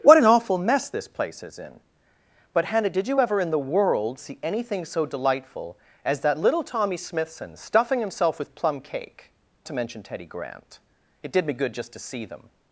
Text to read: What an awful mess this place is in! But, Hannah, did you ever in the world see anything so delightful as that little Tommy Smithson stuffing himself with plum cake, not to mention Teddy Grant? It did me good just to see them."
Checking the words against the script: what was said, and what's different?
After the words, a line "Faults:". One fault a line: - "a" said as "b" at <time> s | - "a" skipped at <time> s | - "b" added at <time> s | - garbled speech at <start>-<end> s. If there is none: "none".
What an awful mess this place is in! But, Hannah, did you ever in the world see anything so delightful as that little Tommy Smithson stuffing himself with plum cake, to mention Teddy Grant? It did me good just to see them."
Faults:
- "not" skipped at 9.3 s